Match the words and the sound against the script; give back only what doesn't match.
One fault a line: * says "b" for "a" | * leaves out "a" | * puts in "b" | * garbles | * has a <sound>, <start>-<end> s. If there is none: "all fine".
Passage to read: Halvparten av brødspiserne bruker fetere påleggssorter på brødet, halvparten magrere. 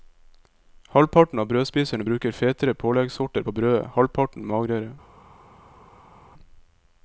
all fine